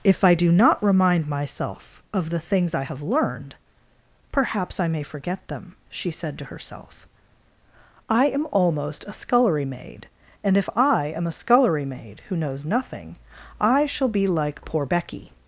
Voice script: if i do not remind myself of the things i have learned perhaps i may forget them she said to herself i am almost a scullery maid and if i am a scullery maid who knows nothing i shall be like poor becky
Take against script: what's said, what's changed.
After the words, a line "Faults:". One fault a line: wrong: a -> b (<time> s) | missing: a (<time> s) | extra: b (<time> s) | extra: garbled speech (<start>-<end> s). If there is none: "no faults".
if i do not remind myself of the things i have learned perhaps i may forget them she said to herself i am almost a scullery maid and if i am a scullery maid who knows nothing i shall be like poor becky
Faults:
no faults